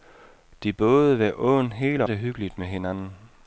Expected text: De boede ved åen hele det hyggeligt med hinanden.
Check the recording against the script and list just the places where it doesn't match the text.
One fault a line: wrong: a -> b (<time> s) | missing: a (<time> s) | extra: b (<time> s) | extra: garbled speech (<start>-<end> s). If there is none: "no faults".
no faults